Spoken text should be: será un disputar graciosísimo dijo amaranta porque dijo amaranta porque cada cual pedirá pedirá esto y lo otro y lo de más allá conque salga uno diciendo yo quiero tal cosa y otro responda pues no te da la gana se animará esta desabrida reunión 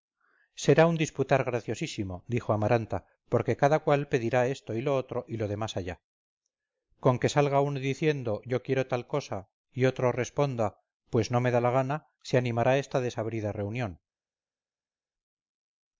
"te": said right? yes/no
no